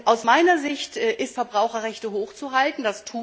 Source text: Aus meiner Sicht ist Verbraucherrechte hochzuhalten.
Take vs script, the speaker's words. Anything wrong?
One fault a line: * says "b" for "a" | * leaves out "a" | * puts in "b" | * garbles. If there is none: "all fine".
all fine